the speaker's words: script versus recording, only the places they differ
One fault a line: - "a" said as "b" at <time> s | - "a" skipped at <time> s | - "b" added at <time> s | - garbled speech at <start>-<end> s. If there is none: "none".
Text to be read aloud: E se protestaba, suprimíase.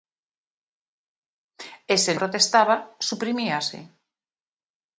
none